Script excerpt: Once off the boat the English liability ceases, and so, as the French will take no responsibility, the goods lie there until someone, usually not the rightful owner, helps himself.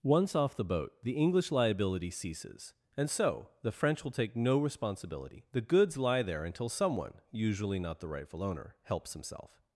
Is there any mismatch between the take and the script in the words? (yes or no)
yes